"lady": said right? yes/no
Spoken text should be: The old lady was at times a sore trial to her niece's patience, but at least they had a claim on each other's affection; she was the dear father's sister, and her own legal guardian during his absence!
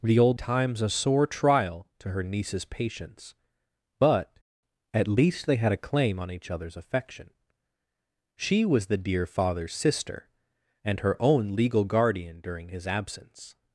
no